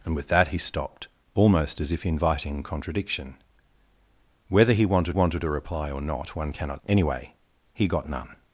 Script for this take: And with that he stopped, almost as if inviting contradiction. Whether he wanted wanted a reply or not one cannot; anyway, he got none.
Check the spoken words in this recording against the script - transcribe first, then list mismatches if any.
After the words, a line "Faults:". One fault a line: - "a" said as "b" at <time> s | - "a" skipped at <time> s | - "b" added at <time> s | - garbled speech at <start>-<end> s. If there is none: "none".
And with that he stopped, almost as if inviting contradiction. Whether he wanted wanted a reply or not one cannot; anyway, he got none.
Faults:
none